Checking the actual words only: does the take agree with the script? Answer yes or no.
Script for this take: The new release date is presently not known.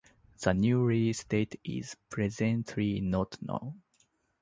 yes